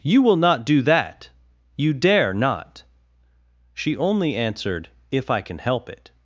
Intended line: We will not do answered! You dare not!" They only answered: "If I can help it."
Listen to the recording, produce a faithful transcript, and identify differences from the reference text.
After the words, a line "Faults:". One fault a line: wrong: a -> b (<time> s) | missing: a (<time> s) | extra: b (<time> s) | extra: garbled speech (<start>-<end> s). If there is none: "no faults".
You will not do that! You dare not!" She only answered: "If I can help it."
Faults:
wrong: We -> You (0.0 s)
wrong: answered -> that (0.8 s)
wrong: They -> She (3.7 s)